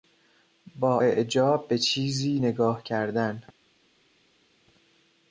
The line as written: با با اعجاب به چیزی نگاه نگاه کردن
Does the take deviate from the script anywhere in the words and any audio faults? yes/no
yes